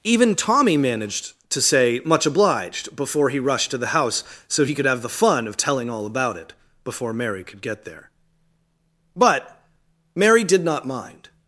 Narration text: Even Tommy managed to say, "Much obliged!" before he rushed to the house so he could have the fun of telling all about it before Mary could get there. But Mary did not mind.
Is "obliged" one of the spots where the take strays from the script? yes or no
no